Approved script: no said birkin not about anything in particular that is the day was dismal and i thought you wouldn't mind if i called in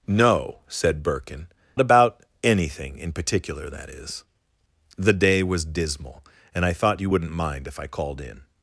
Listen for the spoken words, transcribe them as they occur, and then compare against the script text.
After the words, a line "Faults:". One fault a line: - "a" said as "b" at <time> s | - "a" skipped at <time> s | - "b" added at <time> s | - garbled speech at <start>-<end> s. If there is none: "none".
no said birkin about anything in particular that is the day was dismal and i thought you wouldn't mind if i called in
Faults:
- "not" skipped at 1.5 s